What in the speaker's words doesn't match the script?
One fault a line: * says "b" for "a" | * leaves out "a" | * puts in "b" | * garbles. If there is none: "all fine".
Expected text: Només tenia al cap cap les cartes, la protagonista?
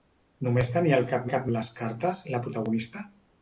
all fine